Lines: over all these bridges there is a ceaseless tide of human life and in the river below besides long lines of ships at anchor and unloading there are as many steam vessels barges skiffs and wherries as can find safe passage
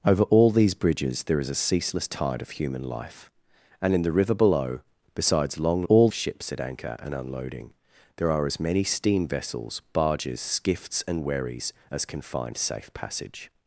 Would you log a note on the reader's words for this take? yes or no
yes